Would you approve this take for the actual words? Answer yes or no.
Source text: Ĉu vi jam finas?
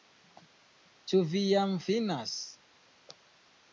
yes